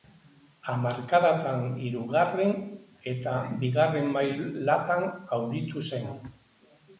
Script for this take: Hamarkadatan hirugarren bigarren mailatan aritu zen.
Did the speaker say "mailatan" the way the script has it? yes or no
yes